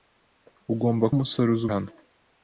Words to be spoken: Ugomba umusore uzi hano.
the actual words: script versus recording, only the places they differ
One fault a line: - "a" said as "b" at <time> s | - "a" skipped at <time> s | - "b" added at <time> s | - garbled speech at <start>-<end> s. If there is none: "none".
none